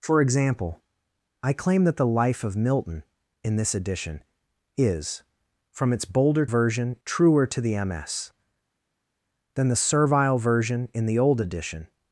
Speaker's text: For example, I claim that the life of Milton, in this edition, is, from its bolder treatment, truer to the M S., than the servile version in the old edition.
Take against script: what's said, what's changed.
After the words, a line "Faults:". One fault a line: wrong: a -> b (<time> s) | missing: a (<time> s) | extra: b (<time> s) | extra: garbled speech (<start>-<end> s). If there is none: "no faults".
For example, I claim that the life of Milton, in this edition, is, from its bolder version, truer to the M S., than the servile version in the old edition.
Faults:
wrong: treatment -> version (6.4 s)